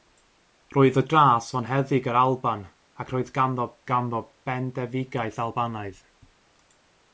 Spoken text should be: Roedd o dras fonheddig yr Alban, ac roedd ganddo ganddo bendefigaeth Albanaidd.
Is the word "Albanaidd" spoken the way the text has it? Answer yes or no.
yes